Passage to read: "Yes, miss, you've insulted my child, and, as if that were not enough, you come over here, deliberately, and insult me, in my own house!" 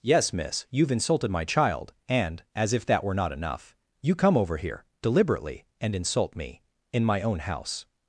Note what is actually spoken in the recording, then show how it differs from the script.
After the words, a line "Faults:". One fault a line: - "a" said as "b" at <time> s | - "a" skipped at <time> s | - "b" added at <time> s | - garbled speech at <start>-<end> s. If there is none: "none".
"Yes, miss, you've insulted my child, and, as if that were not enough, you come over here, deliberately, and insult me, in my own house!"
Faults:
none